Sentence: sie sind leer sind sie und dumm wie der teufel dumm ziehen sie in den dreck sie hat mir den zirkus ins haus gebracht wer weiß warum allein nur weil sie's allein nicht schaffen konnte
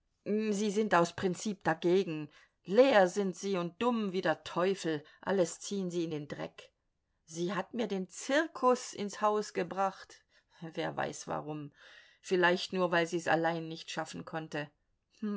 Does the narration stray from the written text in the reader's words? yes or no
yes